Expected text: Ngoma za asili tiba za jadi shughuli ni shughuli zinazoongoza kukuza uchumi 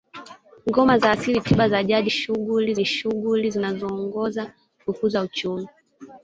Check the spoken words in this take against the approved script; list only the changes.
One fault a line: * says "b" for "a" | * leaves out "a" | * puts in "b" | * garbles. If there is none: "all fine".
all fine